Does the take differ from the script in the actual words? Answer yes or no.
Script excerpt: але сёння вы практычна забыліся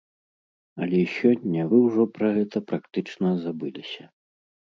yes